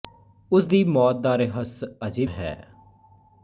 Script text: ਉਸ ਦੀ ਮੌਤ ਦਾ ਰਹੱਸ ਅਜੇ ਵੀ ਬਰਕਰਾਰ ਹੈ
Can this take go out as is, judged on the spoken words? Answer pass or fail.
fail